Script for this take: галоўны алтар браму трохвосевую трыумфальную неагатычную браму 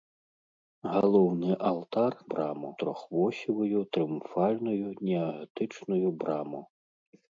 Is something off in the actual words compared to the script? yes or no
no